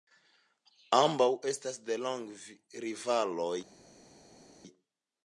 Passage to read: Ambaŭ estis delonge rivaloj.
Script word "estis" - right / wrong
wrong